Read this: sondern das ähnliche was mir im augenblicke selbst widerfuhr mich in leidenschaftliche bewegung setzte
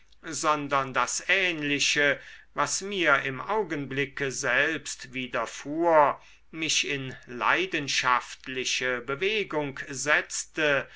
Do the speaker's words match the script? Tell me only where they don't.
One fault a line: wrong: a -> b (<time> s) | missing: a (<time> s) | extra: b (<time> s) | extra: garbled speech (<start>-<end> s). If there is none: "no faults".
no faults